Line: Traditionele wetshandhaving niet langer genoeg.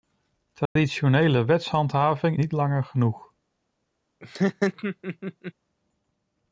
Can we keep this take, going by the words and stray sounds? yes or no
no